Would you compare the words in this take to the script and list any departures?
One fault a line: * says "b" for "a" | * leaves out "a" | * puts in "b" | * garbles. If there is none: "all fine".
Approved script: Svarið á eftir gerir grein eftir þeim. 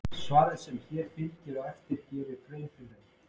* puts in "sem hér fylgir"
* says "fyrir" for "eftir"